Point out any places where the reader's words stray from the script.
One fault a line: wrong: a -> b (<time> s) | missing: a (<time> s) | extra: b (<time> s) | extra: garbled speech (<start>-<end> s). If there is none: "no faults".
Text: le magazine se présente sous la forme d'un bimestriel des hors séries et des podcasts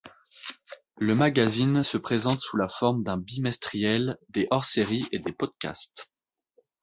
no faults